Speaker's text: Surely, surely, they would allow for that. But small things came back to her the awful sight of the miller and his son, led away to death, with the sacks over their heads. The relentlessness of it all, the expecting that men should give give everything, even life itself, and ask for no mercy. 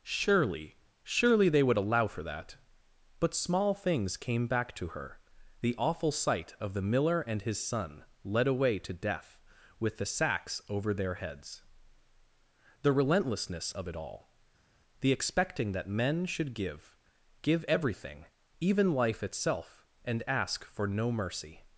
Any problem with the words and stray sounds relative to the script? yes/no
no